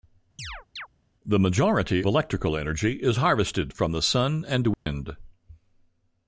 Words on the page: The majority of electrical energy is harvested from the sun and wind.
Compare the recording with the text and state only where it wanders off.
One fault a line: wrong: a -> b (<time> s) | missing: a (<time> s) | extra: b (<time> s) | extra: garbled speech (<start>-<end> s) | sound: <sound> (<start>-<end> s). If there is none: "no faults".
sound: chirp (0.4-0.9 s)
missing: of (2.0 s)
sound: dropout (4.7-4.9 s)